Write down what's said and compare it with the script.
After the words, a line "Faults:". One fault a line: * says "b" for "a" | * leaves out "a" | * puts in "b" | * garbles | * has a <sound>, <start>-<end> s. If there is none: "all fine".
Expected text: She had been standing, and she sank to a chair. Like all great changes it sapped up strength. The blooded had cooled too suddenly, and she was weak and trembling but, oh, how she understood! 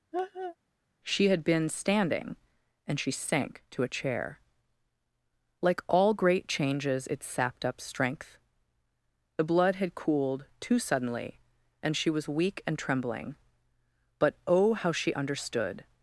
She had been standing, and she sank to a chair. Like all great changes it sapped up strength. The blood had cooled too suddenly, and she was weak and trembling but, oh, how she understood!
Faults:
* has a laugh, 0.1-0.6 s
* says "blood" for "blooded"